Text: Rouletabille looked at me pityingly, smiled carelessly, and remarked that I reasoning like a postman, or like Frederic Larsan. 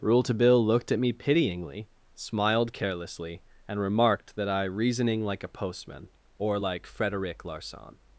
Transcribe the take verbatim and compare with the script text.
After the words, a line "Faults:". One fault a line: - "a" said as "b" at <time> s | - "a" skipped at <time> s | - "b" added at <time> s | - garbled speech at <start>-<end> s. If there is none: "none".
Rouletabille looked at me pityingly, smiled carelessly, and remarked that I reasoning like a postman, or like Frederic Larsan.
Faults:
none